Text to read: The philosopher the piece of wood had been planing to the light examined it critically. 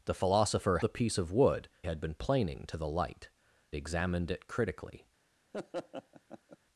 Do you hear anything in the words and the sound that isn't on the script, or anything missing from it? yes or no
yes